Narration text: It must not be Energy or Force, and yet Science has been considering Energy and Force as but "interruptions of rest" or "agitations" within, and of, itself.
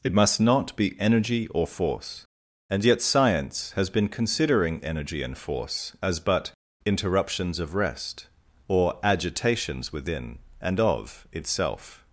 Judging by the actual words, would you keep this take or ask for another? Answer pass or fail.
pass